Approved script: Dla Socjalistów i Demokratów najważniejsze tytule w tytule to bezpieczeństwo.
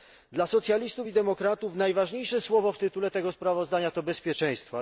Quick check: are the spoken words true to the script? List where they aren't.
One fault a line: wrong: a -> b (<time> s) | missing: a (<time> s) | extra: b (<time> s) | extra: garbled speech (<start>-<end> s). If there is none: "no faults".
wrong: tytule -> słowo (2.4 s)
extra: tego sprawozdania (3.1 s)